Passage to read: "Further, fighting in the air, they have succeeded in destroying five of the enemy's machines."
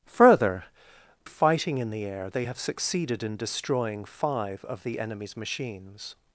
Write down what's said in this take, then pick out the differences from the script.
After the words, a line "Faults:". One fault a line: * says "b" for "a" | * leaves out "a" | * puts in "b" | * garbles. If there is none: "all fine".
"Further, fighting in the air, they have succeeded in destroying five of the enemy's machines."
Faults:
all fine